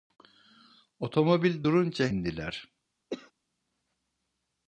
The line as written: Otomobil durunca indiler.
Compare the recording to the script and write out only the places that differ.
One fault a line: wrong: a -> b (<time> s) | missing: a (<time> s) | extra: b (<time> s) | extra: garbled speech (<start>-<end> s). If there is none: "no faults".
no faults